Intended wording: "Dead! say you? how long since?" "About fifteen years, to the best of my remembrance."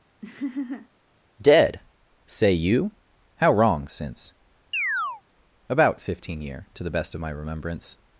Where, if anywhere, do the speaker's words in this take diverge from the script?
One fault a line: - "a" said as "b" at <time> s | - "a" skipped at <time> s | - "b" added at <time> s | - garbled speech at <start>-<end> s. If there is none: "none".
- "long" said as "wrong" at 3.5 s
- "years" said as "year" at 6.4 s